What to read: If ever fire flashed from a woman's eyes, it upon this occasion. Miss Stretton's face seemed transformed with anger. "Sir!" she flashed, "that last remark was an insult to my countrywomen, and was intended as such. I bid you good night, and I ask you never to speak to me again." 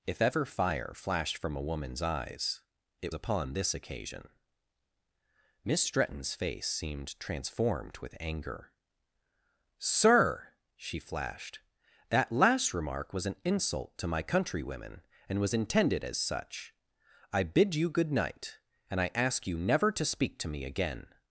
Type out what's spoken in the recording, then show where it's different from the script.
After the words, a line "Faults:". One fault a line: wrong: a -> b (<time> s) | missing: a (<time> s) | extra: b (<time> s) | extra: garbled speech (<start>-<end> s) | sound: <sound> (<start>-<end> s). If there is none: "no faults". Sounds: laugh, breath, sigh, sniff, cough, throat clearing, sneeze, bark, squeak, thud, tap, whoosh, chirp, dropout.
If ever fire flashed from a woman's eyes, it upon this occasion. Miss Stretton's face seemed transformed with anger. "Sir!" she flashed, "that last remark was an insult to my countrywomen, and was intended as such. I bid you good night, and I ask you never to speak to me again."
Faults:
no faults